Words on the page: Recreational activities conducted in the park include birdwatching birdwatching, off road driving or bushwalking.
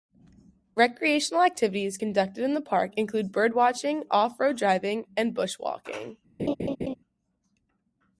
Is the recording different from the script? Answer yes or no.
yes